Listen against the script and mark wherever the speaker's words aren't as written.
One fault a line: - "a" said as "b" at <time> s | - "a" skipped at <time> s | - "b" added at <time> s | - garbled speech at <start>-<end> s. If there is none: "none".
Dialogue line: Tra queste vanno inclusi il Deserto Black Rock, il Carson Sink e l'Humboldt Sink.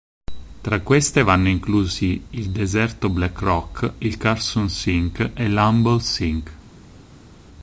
none